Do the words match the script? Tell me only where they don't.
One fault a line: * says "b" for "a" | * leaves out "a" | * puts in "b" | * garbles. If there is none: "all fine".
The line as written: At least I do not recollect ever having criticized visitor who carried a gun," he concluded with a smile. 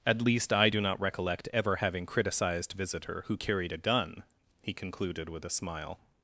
all fine